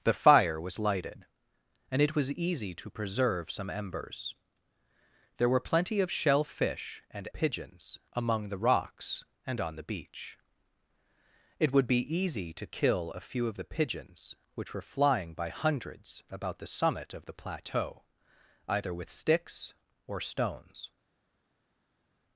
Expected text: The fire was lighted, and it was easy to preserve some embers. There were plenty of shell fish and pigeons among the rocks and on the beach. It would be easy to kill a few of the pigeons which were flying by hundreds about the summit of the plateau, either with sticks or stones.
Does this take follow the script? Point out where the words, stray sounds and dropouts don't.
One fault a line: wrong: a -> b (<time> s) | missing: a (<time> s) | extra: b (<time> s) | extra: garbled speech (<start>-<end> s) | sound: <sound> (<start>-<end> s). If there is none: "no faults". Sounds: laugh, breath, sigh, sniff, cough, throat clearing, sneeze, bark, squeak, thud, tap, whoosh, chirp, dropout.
no faults